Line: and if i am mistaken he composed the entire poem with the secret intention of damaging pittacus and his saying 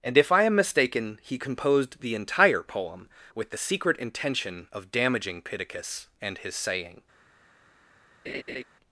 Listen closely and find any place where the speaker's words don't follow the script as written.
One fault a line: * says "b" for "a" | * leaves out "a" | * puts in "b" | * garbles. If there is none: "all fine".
all fine